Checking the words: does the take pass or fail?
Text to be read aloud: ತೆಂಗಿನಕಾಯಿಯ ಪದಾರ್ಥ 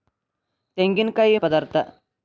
pass